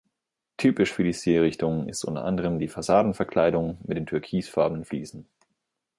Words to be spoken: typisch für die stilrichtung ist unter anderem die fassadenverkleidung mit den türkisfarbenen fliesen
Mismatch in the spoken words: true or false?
false